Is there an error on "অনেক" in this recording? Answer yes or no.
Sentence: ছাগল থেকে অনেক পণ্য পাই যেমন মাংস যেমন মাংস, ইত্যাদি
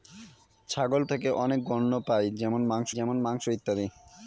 no